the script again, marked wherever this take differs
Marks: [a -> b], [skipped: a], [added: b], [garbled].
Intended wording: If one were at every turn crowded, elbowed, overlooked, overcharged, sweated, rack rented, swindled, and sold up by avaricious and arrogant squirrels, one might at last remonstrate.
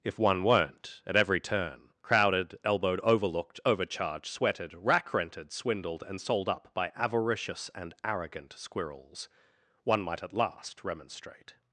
If one [were -> weren't] at every turn crowded, elbowed, overlooked, overcharged, sweated, rack rented, swindled, and sold up by avaricious and arrogant squirrels, one might at last remonstrate.